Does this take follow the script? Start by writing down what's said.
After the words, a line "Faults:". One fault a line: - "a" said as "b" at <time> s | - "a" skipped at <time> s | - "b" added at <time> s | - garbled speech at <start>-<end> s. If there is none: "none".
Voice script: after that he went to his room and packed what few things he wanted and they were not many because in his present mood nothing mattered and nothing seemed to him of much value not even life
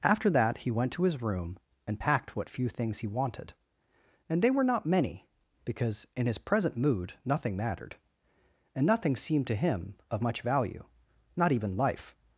after that he went to his room and packed what few things he wanted and they were not many because in his present mood nothing mattered and nothing seemed to him of much value not even life
Faults:
none